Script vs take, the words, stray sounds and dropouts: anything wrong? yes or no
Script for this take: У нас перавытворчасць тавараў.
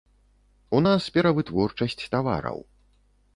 no